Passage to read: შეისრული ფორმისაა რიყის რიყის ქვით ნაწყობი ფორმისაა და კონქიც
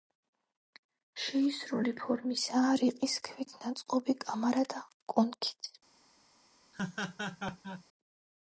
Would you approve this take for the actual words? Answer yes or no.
no